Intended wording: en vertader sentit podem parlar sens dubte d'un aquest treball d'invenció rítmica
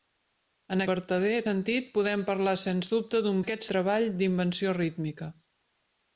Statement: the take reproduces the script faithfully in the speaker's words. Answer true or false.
true